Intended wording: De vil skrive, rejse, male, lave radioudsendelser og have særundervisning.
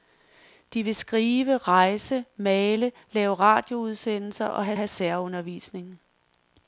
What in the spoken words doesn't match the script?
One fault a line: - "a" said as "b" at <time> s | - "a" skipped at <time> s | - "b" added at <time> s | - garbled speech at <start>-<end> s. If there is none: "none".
- "have" added at 4.8 s